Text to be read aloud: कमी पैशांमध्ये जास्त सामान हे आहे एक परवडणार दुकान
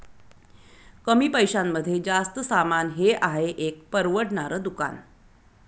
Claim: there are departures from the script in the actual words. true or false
false